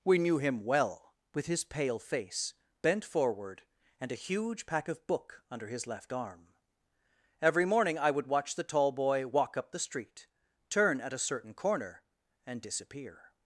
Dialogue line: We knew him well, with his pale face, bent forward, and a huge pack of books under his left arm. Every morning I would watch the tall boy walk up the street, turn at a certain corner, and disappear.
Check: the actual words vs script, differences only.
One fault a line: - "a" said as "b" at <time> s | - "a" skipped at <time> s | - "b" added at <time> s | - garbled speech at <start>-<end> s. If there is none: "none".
- "books" said as "book" at 5.0 s